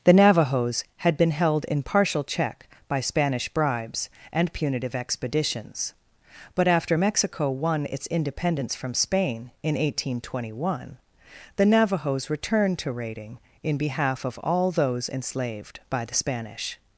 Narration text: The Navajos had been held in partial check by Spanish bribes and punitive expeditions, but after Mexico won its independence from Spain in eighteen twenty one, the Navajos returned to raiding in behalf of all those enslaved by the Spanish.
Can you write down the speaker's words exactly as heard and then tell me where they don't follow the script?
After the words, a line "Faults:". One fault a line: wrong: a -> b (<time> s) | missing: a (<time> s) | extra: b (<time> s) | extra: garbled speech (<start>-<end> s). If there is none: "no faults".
The Navajos had been held in partial check by Spanish bribes and punitive expeditions, but after Mexico won its independence from Spain in eighteen twenty one, the Navajos returned to raiding in behalf of all those enslaved by the Spanish.
Faults:
no faults